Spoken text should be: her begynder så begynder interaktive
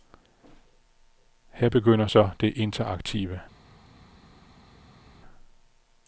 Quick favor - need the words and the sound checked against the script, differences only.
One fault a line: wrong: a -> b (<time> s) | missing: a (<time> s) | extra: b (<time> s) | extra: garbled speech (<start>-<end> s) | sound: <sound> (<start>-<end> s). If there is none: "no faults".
wrong: begynder -> det (2.4 s)